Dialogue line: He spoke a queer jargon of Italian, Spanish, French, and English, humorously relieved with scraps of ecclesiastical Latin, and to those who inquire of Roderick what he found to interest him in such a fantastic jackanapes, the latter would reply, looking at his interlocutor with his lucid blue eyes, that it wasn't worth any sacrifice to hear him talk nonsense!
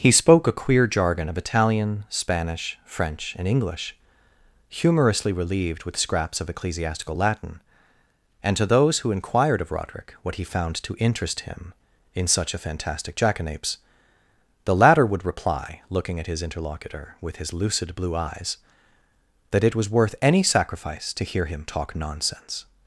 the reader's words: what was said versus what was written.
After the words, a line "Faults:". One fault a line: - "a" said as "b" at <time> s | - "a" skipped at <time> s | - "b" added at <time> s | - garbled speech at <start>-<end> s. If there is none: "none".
He spoke a queer jargon of Italian, Spanish, French, and English, humorously relieved with scraps of ecclesiastical Latin, and to those who inquired of Roderick what he found to interest him in such a fantastic jackanapes, the latter would reply, looking at his interlocutor with his lucid blue eyes, that it was worth any sacrifice to hear him talk nonsense!
Faults:
- "inquire" said as "inquired" at 9.1 s
- "wasn't" said as "was" at 19.7 s